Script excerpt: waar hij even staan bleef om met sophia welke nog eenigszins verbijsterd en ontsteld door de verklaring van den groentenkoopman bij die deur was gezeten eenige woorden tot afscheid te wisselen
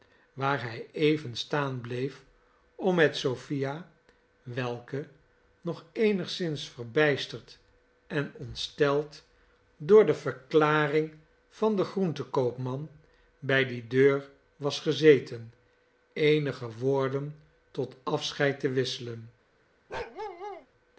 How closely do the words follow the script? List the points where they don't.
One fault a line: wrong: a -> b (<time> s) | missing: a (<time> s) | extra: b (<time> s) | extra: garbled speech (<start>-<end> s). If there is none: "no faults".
no faults